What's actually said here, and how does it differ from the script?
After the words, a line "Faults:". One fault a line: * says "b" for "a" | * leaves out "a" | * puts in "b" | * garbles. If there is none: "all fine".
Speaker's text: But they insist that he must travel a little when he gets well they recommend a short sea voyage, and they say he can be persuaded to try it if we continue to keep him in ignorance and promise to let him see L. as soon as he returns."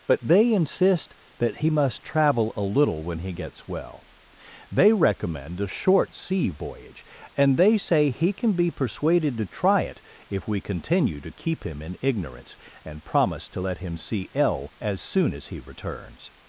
But they insist that he must travel a little when he gets well they recommend a short sea voyage, and they say he can be persuaded to try it if we continue to keep him in ignorance and promise to let him see L. as soon as he returns."
Faults:
all fine